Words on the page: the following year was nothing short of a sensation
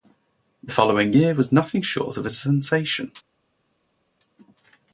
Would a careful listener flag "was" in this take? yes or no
no